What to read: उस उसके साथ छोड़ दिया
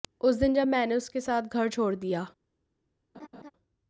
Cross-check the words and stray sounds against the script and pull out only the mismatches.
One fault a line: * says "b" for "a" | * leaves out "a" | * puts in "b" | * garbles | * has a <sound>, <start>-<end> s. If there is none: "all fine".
* puts in "दिन जब मैंने"
* puts in "घर"
* has a laugh, 3.1-3.5 s